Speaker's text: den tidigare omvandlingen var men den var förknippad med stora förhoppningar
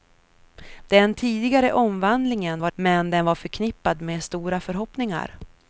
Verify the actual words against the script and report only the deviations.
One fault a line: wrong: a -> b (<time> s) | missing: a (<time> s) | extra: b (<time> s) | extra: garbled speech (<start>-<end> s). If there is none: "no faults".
no faults